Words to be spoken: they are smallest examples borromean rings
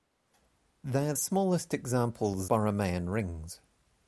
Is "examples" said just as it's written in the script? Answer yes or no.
yes